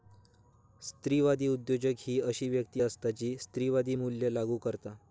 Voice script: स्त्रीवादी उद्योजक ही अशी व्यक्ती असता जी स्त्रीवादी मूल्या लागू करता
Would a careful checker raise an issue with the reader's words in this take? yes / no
no